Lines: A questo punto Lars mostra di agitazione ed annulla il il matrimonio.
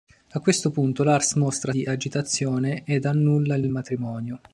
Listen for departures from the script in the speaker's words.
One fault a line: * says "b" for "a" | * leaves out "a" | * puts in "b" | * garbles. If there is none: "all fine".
all fine